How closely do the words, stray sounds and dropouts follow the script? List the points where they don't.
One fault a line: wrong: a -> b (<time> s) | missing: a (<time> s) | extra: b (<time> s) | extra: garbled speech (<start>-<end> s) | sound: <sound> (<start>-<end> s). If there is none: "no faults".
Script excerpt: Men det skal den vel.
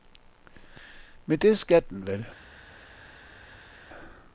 no faults